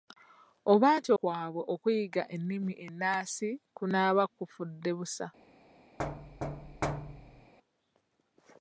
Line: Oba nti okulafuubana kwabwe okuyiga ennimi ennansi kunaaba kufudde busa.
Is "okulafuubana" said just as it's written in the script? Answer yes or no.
no